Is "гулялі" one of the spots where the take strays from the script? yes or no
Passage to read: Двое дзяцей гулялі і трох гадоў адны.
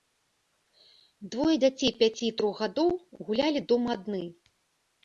yes